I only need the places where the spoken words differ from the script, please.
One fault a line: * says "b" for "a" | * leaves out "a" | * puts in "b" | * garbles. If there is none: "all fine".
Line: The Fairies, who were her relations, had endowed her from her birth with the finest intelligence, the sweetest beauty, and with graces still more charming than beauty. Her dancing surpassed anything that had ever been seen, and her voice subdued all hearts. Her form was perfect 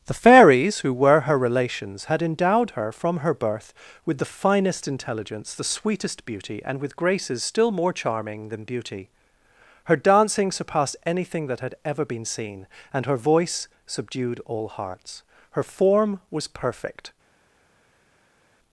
all fine